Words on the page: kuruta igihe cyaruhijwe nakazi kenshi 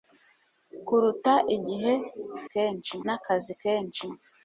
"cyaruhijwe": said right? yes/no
no